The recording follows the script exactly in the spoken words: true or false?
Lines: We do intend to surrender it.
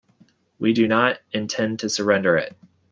false